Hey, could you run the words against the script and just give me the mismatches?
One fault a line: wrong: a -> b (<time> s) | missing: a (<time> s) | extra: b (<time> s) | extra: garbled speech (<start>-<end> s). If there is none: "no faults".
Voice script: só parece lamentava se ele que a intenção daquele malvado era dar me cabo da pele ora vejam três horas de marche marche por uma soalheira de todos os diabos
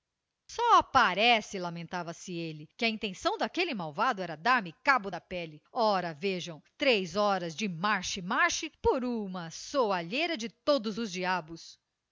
no faults